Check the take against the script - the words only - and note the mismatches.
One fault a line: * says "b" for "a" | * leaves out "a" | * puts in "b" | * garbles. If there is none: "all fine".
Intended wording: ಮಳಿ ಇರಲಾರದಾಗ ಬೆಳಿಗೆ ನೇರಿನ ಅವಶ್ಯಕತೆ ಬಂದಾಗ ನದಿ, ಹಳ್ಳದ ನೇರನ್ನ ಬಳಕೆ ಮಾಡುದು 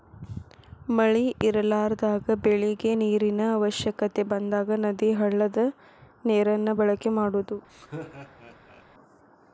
all fine